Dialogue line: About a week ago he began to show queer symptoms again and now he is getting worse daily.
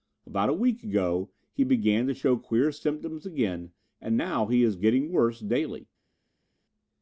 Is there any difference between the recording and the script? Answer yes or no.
no